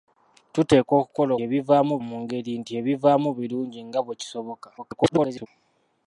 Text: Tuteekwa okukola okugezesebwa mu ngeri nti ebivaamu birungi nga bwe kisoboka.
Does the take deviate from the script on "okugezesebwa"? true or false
true